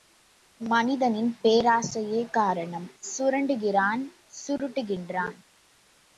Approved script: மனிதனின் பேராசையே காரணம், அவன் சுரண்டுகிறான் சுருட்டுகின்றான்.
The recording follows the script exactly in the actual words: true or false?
false